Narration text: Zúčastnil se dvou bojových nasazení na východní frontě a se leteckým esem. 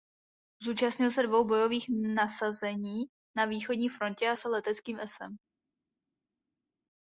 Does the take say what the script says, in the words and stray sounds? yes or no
yes